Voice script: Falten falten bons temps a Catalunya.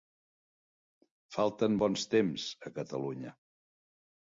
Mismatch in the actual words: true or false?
true